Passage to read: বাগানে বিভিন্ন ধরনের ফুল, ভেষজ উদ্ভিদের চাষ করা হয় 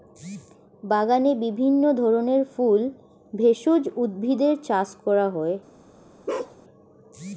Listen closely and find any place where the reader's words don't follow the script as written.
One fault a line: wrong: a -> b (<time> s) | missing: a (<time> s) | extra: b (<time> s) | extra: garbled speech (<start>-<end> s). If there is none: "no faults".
no faults